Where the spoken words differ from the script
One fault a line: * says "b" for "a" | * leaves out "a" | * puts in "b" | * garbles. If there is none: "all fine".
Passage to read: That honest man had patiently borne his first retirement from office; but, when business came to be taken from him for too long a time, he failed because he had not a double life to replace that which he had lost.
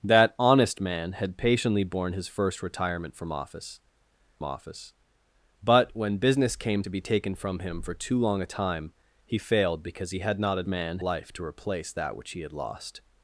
* puts in "office"
* says "man" for "double"